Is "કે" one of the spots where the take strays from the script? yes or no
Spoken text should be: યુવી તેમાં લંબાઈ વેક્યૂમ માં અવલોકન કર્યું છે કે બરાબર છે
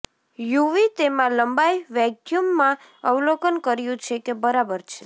no